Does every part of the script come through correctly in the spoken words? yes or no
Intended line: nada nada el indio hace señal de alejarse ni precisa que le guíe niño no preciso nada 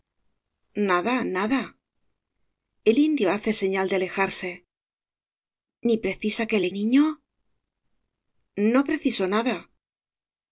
no